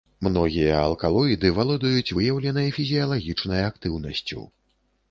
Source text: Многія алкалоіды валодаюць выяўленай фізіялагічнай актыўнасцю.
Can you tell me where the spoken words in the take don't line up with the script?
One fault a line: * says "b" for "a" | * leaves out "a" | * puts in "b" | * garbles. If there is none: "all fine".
all fine